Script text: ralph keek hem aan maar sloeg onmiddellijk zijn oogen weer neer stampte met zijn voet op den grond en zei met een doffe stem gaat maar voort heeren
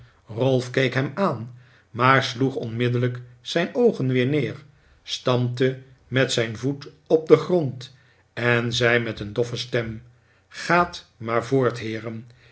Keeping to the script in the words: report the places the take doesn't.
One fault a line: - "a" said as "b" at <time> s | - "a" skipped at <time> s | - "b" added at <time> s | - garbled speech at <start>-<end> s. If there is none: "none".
none